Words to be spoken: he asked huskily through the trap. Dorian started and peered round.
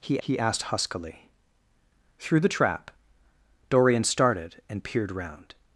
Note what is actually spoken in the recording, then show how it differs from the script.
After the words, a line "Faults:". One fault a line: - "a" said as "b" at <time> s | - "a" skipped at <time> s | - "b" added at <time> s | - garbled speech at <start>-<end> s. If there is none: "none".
he he asked huskily through the trap. Dorian started and peered round.
Faults:
- "he" added at 0.2 s